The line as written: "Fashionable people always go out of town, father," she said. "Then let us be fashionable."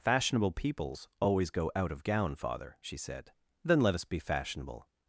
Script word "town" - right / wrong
wrong